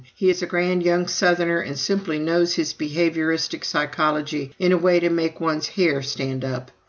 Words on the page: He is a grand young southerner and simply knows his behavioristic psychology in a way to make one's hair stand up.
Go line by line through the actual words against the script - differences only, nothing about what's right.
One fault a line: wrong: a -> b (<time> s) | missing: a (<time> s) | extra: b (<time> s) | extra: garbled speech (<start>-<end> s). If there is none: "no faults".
no faults